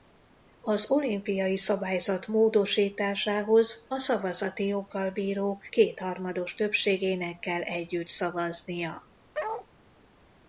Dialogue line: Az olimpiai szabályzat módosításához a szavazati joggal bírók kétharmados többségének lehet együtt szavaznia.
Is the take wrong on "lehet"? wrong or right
wrong